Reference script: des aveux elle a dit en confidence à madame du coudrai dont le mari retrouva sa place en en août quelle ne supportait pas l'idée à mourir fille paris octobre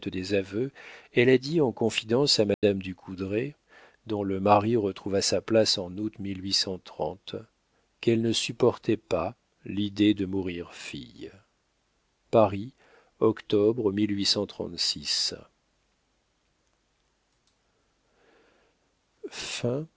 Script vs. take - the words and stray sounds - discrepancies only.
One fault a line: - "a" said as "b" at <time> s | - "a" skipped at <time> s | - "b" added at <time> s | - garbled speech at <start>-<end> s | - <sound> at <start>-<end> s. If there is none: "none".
- dropout at 2.5-2.6 s
- "en" skipped at 6.0 s
- "à" said as "de" at 10.1 s